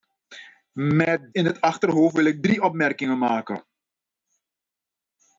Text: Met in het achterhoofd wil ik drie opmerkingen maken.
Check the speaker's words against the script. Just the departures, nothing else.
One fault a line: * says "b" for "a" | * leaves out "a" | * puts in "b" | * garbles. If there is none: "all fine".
all fine